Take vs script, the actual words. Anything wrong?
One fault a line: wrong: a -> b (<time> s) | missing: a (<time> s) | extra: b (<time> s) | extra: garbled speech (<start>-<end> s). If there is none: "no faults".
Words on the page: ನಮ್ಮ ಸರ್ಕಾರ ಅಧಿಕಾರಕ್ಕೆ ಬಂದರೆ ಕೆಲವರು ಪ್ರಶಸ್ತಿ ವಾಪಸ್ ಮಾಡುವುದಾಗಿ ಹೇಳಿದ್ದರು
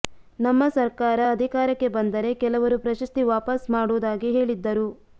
no faults